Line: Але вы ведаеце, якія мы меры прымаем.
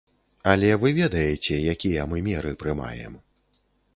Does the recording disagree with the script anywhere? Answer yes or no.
no